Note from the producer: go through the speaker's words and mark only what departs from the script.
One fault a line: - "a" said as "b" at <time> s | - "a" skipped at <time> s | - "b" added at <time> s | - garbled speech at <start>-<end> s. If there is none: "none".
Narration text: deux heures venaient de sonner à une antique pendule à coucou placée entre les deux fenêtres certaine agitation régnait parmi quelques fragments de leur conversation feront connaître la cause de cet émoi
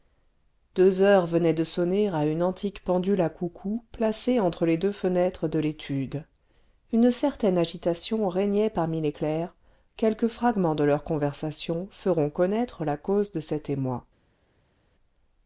- "de l'étude une" added at 5.5 s
- "les clercs" added at 9.0 s